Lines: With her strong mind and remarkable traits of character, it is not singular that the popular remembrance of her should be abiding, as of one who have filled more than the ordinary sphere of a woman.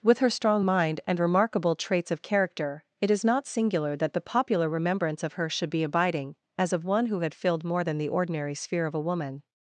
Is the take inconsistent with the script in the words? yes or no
yes